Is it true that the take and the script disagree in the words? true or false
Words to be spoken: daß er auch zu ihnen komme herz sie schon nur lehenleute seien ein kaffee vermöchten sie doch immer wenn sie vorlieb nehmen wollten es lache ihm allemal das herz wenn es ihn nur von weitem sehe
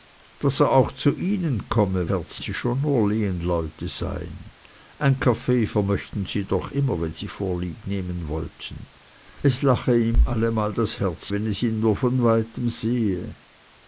false